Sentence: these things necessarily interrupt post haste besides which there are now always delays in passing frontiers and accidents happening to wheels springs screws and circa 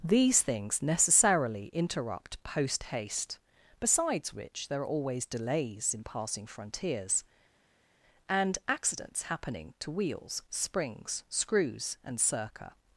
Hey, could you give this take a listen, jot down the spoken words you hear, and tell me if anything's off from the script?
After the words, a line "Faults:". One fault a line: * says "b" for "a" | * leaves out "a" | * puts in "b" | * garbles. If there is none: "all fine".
these things necessarily interrupt post haste besides which there are always delays in passing frontiers and accidents happening to wheels springs screws and circa
Faults:
* leaves out "now"